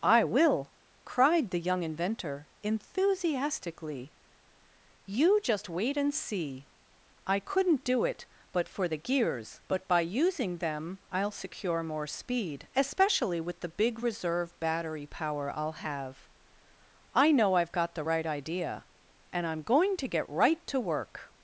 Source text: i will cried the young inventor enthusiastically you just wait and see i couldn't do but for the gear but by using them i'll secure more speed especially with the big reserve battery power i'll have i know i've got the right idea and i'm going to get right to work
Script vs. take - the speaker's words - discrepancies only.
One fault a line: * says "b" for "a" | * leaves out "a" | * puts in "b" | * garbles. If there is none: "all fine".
* puts in "it"
* says "gears" for "gear"